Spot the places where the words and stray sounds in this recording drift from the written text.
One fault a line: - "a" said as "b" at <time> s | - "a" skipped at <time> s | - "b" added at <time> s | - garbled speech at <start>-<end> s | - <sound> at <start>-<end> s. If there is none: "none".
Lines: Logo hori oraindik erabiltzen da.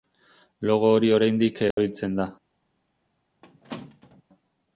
- dropout at 1.7-1.8 s
- squeak at 3.4-4.2 s